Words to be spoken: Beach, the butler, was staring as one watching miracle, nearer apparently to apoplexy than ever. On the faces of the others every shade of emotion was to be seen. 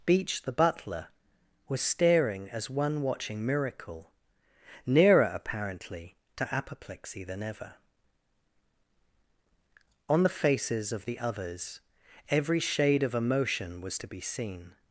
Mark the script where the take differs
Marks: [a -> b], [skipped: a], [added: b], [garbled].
Beach, the butler, was staring as one watching miracle, nearer apparently to apoplexy than ever. On the faces of the others every shade of emotion was to be seen.